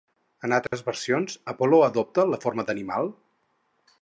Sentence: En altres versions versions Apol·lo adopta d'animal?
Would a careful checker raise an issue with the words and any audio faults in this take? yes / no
yes